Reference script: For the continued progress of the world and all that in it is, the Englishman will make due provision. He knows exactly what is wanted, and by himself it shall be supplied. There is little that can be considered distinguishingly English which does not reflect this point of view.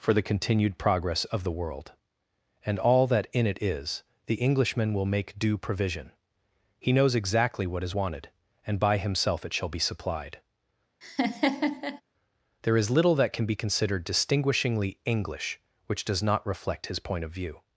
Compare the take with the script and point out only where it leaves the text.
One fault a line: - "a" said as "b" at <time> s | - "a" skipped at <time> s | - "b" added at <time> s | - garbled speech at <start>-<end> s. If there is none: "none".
- "this" said as "his" at 16.9 s